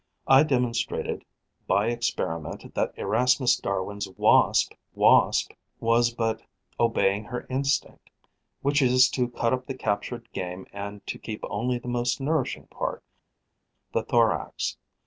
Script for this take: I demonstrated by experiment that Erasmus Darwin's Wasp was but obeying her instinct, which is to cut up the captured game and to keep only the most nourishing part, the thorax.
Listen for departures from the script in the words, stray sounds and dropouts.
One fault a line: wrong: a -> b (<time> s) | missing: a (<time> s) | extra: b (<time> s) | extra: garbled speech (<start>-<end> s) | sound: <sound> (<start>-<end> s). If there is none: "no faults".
extra: Wasp (4.9 s)